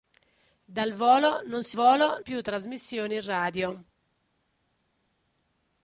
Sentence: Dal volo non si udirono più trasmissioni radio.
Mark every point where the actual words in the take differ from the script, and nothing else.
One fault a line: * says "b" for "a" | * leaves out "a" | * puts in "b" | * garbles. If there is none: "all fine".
* says "volo" for "udirono"